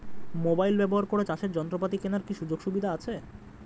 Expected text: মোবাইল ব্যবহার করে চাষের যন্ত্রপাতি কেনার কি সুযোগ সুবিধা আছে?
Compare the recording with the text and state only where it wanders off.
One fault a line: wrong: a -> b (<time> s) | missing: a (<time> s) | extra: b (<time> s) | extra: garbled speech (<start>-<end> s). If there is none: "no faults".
no faults